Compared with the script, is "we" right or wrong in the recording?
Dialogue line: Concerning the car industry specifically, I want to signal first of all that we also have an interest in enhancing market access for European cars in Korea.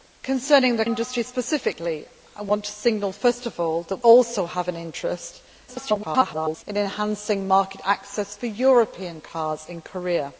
wrong